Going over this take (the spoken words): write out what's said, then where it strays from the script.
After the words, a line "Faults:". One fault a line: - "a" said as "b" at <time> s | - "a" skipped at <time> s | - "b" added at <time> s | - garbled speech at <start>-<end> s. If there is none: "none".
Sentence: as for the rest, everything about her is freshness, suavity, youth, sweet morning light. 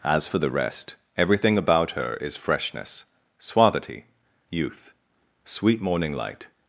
as for the rest, everything about her is freshness, suavity, youth, sweet morning light.
Faults:
none